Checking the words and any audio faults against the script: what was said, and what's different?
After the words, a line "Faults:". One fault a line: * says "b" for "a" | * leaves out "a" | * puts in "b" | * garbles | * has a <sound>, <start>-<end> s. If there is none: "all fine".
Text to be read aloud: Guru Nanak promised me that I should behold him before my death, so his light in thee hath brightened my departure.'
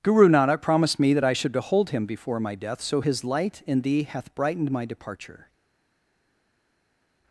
Guru Nanak promised me that I should behold him before my death, so his light in thee hath brightened my departure.'
Faults:
all fine